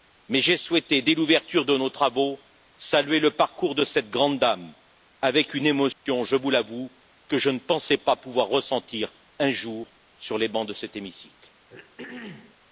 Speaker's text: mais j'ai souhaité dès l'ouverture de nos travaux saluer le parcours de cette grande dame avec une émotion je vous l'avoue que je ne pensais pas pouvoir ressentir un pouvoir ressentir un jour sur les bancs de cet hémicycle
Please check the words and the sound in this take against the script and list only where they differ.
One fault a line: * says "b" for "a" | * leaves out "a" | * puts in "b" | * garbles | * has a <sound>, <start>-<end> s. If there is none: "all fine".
* has a dropout, 5.9-6.1 s
* leaves out "pouvoir ressentir un"
* has a throat clearing, 11.7-12.6 s